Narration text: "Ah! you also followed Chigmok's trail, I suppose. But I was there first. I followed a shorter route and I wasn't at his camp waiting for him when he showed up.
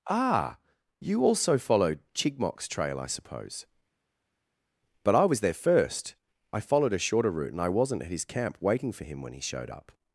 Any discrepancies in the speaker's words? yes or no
no